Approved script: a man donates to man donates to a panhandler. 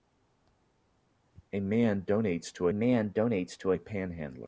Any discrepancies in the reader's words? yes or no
no